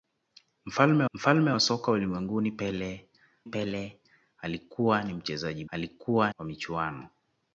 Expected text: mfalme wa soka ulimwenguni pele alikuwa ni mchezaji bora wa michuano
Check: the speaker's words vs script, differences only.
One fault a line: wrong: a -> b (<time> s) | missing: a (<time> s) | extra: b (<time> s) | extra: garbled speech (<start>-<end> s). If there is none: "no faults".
extra: mfalme (1.1 s)
extra: pele (3.4 s)
wrong: bora -> alikuwa (5.7 s)